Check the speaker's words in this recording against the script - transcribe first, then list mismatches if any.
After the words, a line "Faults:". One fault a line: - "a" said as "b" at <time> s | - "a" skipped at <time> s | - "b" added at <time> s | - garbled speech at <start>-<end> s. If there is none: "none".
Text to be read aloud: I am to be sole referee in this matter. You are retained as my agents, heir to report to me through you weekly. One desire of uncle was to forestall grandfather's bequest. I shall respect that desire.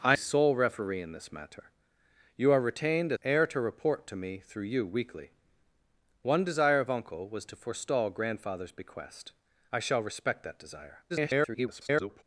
I sole referee in this matter. You are retained heir to report to me through you weekly. One desire of uncle was to forestall grandfather's bequest. I shall respect that desire. [garbled]
Faults:
- "am to be" skipped at 0.1 s
- "as my agents" skipped at 3.1 s
- garbled speech at 11.1-12.2 s